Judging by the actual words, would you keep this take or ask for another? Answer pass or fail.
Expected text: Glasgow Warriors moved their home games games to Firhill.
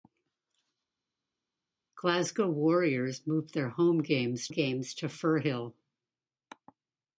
pass